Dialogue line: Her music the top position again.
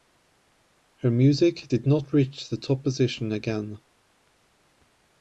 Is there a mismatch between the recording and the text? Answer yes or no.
yes